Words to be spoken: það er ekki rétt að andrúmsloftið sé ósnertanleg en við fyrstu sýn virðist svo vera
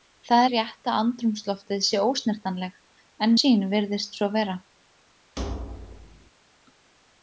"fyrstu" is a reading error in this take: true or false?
true